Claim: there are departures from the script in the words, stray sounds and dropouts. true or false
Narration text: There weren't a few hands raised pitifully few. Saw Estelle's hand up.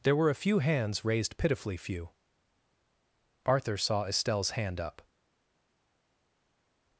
true